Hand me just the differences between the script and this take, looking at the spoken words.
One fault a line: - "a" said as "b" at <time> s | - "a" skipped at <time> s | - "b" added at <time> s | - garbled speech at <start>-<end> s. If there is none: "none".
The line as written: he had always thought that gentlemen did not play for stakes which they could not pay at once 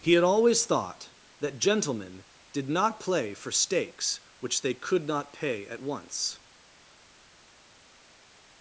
none